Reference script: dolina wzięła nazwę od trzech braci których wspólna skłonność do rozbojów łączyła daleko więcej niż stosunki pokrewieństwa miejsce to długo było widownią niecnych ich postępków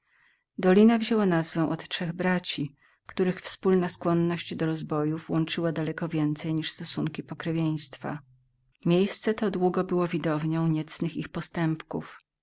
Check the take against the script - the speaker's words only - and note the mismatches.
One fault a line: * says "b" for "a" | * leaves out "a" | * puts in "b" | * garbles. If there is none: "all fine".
all fine